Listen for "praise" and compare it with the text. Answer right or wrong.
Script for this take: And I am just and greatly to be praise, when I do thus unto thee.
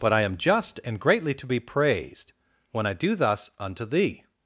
wrong